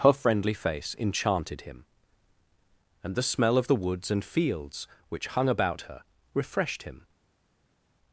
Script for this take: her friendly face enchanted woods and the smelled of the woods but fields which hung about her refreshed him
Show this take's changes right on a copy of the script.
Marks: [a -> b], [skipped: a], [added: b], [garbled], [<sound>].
her friendly face enchanted [woods -> him] and the [smelled -> smell] of the woods [but -> and] fields which hung about her refreshed him